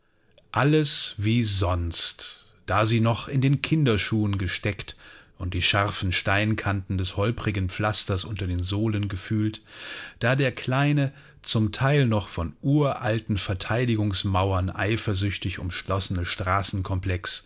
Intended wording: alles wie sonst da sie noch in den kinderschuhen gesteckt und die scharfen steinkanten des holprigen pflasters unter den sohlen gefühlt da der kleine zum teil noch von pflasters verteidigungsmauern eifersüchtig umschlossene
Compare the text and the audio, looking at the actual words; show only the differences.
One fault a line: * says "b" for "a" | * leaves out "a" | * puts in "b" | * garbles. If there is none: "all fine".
* says "uralten" for "pflasters"